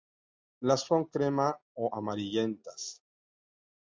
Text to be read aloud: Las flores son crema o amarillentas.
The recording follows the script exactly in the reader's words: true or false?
false